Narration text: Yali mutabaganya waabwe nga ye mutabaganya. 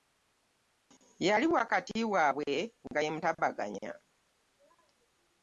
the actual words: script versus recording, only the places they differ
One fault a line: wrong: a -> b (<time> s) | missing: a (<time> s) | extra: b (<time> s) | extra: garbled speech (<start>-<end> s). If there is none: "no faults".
wrong: mutabaganya -> wakati (1.6 s)